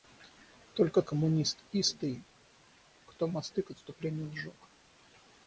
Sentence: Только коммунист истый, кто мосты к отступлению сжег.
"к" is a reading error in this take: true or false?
false